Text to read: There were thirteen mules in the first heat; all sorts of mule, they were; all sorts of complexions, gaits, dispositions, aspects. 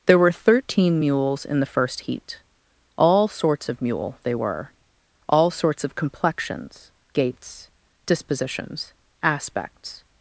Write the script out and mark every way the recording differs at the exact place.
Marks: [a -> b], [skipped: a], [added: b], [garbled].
There were thirteen mules in the first heat; all sorts of mule, they were; all sorts of complexions, gaits, dispositions, aspects.